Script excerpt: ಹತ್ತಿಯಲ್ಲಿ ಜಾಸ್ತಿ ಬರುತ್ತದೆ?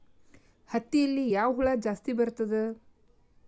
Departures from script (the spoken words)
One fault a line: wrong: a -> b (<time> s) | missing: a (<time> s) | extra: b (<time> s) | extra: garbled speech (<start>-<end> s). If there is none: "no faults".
extra: ಯಾವ ಹುಳ (1.3 s)